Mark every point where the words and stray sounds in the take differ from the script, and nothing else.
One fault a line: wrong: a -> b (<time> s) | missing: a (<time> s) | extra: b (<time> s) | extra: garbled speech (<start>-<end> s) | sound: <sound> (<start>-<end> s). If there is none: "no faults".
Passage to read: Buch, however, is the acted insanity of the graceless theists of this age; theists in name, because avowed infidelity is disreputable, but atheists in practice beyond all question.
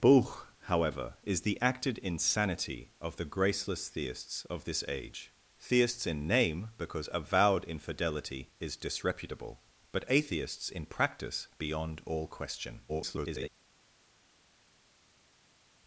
extra: garbled speech (12.9-13.5 s)